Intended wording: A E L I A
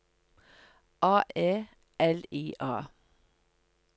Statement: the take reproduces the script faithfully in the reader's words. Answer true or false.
true